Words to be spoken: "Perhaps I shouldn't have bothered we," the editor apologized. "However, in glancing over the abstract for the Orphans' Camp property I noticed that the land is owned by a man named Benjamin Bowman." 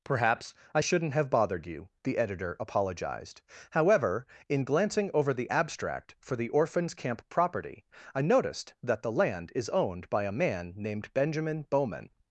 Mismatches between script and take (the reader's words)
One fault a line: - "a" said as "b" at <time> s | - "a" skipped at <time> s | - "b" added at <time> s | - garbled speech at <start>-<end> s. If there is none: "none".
- "we" said as "you" at 1.7 s